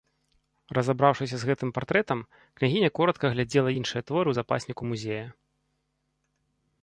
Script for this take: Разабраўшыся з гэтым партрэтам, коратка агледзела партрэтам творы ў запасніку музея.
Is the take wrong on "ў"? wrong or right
right